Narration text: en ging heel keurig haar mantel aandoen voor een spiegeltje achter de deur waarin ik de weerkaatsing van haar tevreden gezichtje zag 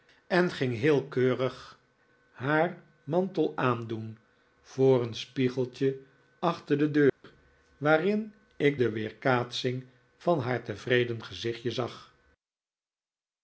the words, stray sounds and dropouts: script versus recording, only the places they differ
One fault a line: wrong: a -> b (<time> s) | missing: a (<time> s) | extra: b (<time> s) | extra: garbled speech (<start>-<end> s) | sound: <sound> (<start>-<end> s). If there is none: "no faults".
sound: dropout (7.1-7.2 s)